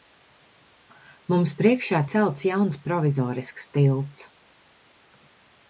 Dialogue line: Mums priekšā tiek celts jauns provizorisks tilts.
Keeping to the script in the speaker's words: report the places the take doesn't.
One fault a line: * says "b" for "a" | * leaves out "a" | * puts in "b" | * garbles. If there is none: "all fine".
* leaves out "tiek"